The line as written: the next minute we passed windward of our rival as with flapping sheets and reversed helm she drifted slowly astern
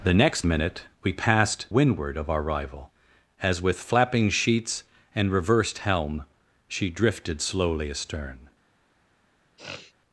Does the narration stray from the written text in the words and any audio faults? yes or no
yes